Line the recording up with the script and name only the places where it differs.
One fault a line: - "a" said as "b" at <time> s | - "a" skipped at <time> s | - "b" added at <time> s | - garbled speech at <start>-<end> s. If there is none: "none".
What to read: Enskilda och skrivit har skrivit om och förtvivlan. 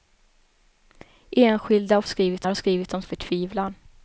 none